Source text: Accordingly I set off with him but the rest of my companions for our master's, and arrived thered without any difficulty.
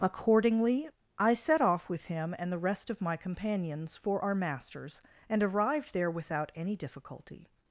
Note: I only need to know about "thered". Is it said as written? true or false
false